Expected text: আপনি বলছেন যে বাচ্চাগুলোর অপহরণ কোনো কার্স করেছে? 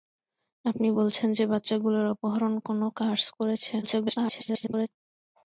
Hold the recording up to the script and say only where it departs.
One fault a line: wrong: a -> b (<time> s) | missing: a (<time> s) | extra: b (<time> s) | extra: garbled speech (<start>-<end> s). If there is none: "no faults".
extra: garbled speech (3.8-4.9 s)